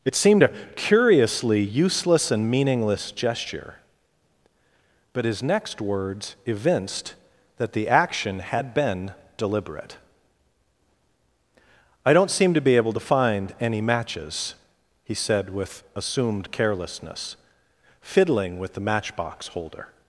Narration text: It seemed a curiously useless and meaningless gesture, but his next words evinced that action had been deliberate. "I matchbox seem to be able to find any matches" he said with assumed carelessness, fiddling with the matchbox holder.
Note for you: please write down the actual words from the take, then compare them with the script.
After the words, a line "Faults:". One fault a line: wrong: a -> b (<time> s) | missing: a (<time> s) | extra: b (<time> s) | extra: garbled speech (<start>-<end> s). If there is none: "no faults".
It seemed a curiously useless and meaningless gesture, but his next words evinced that the action had been deliberate. "I don't seem to be able to find any matches" he said with assumed carelessness, fiddling with the matchbox holder.
Faults:
extra: the (7.7 s)
wrong: matchbox -> don't (12.1 s)